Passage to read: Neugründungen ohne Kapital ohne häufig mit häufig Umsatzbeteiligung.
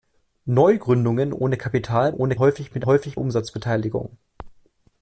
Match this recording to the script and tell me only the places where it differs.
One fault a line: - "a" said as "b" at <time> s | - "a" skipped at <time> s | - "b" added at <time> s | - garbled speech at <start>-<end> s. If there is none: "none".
none